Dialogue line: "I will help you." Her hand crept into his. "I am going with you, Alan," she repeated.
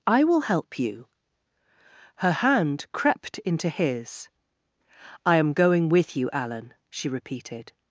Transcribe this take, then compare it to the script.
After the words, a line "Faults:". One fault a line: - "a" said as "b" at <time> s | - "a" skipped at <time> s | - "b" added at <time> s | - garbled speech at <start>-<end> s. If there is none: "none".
"I will help you." Her hand crept into his. "I am going with you, Alan," she repeated.
Faults:
none